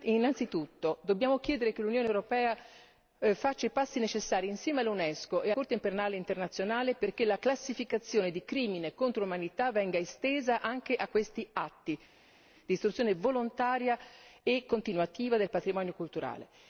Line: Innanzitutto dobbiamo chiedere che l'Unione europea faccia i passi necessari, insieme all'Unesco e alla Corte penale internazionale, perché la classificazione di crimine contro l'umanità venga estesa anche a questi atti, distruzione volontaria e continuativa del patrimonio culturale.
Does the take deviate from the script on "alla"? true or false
true